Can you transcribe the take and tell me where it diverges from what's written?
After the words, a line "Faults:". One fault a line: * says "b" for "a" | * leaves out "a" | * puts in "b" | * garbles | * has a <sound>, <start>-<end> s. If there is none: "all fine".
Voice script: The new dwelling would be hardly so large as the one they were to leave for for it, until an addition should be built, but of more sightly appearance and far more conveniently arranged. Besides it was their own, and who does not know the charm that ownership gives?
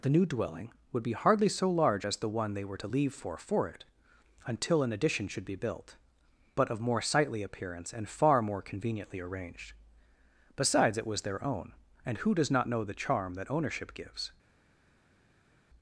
The new dwelling would be hardly so large as the one they were to leave for for it, until an addition should be built, but of more sightly appearance and far more conveniently arranged. Besides it was their own, and who does not know the charm that ownership gives?
Faults:
all fine